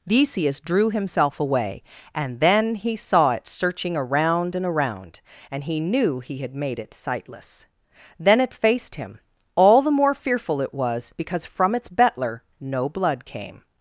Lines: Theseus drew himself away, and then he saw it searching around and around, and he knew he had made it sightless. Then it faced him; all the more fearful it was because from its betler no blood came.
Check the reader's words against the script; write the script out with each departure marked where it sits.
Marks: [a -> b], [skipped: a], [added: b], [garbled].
Theseus drew himself away, and then he saw it searching around and around, and he knew he had made it sightless. Then it faced him; all the more fearful it was because from its betler no blood came.